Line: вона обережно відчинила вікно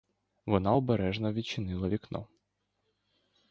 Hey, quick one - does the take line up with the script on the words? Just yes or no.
yes